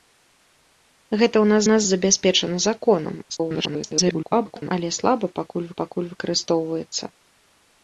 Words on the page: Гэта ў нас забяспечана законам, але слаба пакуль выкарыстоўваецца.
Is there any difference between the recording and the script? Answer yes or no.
yes